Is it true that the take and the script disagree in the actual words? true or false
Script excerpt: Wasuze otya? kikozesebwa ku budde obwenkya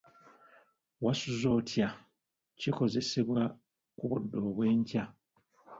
false